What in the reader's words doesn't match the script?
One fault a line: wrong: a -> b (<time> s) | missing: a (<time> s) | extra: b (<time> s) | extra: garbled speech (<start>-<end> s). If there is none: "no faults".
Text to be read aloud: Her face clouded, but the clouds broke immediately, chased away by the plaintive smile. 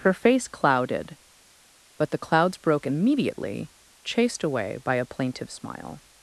wrong: the -> a (4.9 s)